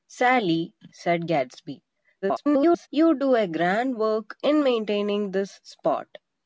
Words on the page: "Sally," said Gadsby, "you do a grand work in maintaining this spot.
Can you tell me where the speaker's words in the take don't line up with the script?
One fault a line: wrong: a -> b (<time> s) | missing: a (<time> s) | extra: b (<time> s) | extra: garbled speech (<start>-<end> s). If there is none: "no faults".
extra: garbled speech (2.2-2.9 s)